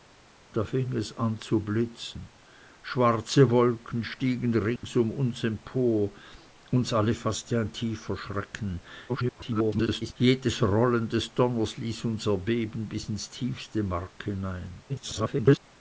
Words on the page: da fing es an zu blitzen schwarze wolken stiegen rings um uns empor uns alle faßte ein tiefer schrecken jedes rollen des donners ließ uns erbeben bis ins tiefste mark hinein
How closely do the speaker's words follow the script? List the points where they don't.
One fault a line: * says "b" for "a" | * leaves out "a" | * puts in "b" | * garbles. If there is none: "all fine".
* garbles
* garbles